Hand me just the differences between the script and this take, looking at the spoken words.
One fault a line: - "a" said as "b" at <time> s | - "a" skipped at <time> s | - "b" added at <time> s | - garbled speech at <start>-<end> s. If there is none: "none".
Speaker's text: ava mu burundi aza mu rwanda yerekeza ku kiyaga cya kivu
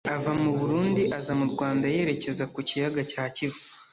none